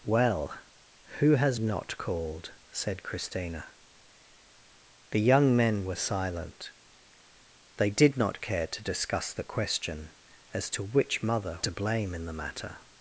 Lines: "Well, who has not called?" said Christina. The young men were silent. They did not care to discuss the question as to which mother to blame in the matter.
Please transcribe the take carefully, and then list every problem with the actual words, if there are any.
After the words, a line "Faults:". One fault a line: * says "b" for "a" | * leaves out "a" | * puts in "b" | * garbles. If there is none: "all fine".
"Well, who has not called?" said Christina. The young men were silent. They did not care to discuss the question as to which mother to blame in the matter.
Faults:
all fine